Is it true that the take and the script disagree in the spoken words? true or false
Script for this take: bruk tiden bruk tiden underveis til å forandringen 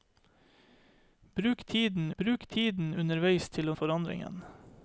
false